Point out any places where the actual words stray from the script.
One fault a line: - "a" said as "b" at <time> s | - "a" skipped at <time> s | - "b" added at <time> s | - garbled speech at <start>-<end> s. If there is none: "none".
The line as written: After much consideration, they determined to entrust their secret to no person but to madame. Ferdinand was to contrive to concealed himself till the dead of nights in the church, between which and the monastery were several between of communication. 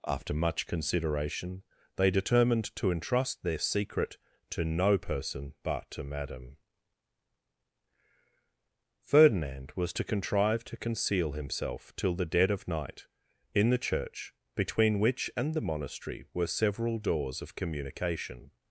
- "concealed" said as "conceal" at 10.8 s
- "nights" said as "night" at 12.7 s
- "between" said as "doors" at 17.0 s